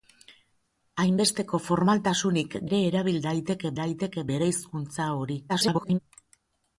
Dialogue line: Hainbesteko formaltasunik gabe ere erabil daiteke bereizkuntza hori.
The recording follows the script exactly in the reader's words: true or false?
false